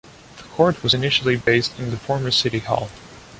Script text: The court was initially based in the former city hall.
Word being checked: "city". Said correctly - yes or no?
yes